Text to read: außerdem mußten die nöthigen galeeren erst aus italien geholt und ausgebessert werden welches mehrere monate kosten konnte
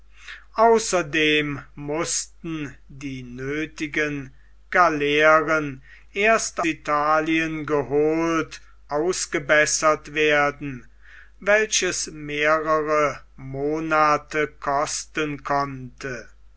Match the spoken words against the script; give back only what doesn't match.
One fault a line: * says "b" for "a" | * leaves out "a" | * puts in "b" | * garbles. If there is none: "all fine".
* leaves out "aus"
* leaves out "und"